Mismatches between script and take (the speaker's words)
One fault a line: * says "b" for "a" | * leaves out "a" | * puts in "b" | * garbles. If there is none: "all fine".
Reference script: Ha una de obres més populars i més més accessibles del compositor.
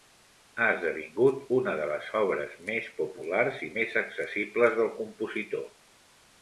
* puts in "esdevingut"
* puts in "les"
* leaves out "més"